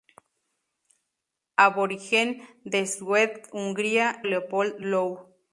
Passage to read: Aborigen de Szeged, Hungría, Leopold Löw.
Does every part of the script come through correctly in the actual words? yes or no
yes